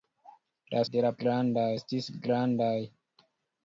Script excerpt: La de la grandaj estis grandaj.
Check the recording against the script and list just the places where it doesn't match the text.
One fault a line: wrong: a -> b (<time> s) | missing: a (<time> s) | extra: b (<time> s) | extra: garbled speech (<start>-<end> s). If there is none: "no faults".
no faults